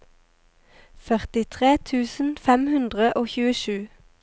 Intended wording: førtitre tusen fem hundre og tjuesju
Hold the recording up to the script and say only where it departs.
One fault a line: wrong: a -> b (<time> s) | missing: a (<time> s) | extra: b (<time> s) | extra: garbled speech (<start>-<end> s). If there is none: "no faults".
no faults